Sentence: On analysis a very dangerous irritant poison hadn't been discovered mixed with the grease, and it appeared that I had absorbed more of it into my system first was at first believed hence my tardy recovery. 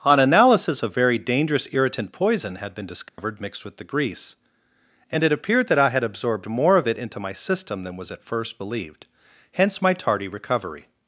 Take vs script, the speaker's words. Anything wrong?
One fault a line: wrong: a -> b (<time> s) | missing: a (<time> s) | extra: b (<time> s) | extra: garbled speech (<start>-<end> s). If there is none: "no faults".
wrong: hadn't -> had (2.5 s)
wrong: first -> than (7.8 s)